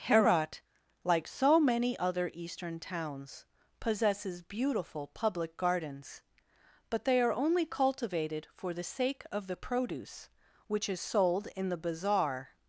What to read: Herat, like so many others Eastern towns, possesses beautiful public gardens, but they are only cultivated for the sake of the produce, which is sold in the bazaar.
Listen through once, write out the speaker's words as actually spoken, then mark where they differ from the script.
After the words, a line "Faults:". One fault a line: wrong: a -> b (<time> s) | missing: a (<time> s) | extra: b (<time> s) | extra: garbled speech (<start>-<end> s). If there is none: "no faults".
Herat, like so many other Eastern towns, possesses beautiful public gardens, but they are only cultivated for the sake of the produce, which is sold in the bazaar.
Faults:
wrong: others -> other (2.0 s)